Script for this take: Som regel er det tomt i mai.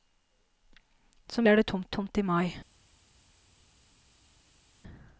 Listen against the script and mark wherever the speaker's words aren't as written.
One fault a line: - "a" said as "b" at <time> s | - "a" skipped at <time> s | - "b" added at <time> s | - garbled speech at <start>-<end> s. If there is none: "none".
- "regel" skipped at 1.5 s
- "tomt" added at 2.0 s